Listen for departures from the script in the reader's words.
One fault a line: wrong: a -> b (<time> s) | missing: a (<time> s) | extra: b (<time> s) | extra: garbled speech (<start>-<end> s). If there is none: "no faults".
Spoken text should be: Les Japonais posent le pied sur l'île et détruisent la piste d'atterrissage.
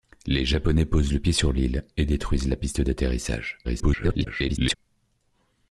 extra: garbled speech (3.6-4.7 s)